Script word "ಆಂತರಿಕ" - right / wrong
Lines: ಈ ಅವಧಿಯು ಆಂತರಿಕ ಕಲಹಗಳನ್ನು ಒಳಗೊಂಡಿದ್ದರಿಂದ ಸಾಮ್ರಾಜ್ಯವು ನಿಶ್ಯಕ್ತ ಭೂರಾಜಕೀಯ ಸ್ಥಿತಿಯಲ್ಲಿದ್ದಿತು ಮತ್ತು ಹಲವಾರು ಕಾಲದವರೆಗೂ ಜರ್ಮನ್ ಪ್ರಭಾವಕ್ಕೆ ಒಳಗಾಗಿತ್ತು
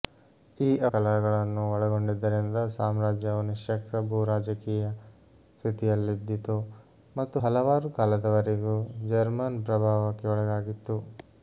wrong